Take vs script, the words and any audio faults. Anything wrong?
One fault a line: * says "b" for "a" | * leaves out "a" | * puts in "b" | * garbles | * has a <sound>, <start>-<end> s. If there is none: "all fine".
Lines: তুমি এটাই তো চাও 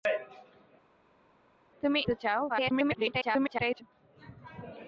* leaves out "এটাই"
* garbles